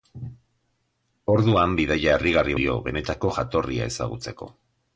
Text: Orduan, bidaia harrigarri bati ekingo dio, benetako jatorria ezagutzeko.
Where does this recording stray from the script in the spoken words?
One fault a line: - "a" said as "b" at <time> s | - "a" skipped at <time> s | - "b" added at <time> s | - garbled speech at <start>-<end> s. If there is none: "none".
- "bati ekingo" skipped at 2.6 s